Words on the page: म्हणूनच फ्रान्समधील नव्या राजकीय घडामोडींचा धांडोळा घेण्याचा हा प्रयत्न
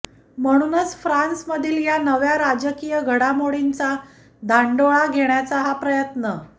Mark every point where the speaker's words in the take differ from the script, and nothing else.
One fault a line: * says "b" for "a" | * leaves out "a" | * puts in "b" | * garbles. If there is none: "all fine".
* puts in "या"